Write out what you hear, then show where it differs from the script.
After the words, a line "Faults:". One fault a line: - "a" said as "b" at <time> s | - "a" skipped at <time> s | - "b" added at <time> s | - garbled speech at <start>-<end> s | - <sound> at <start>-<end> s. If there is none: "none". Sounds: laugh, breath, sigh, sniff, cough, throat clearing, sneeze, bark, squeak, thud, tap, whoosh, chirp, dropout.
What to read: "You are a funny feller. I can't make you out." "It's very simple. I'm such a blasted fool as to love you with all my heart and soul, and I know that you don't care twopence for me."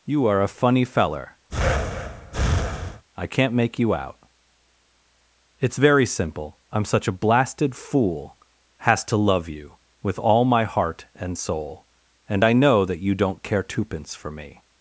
"You are a funny feller. I can't make you out." "It's very simple. I'm such a blasted fool has to love you with all my heart and soul, and I know that you don't care twopence for me."
Faults:
- breath at 1.5-3.0 s
- "as" said as "has" at 8.8 s